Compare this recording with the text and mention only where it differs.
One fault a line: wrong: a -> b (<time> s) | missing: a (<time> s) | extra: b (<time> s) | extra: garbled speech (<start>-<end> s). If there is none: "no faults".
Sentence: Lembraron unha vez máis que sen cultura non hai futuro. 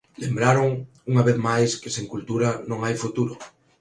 no faults